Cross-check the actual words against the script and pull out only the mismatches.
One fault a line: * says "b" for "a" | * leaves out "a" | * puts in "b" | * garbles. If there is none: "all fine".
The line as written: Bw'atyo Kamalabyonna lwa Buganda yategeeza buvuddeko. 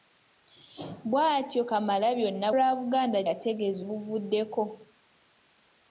all fine